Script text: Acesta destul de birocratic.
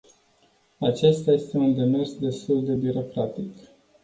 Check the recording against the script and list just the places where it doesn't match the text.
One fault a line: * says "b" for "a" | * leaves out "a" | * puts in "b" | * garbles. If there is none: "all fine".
* puts in "este un demers"